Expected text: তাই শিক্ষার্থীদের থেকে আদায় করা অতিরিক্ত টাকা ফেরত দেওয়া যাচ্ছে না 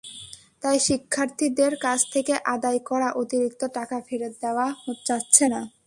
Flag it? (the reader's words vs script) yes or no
yes